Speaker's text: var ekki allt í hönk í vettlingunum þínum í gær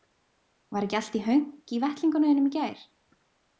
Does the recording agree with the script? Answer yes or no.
yes